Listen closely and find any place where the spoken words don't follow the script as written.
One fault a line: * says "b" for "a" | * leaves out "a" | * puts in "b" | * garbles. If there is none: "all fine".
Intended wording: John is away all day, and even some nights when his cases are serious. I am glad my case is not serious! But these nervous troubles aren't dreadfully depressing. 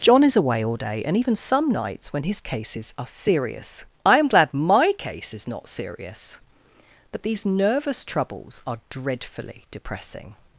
* says "are" for "aren't"